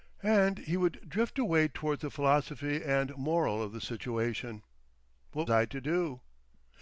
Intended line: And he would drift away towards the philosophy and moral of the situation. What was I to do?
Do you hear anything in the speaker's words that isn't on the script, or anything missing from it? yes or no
yes